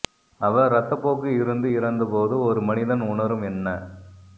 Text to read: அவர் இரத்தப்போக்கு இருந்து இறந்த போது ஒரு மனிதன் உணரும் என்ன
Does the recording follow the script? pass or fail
pass